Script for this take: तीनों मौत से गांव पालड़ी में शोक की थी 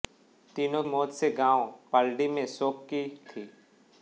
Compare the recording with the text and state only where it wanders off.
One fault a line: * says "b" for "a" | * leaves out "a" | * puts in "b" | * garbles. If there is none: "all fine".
all fine